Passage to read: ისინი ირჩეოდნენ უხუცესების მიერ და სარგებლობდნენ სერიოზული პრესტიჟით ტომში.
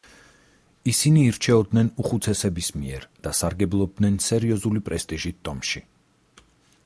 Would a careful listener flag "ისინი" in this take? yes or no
no